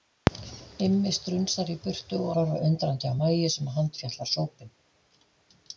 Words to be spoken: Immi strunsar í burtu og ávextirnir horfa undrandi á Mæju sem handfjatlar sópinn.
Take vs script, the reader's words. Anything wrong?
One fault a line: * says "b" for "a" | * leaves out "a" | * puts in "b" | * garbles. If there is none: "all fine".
* leaves out "ávextirnir"